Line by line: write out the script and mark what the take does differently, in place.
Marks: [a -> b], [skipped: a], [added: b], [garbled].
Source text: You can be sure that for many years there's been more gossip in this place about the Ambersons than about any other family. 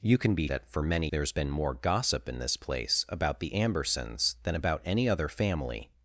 You can be [skipped: sure] that for many [skipped: years] there's been more gossip in this place about the Ambersons than about any other family.